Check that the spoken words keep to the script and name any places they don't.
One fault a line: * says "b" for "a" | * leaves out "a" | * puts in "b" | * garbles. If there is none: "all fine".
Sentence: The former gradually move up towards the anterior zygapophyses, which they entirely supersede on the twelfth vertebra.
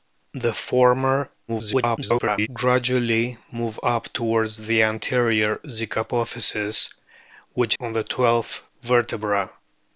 * garbles
* leaves out "they entirely supersede"